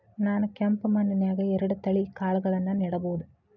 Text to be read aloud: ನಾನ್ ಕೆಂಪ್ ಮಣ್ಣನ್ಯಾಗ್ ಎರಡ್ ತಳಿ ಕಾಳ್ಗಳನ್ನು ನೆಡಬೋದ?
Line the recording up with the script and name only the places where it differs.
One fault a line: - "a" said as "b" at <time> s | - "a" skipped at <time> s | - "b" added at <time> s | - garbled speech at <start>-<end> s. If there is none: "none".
none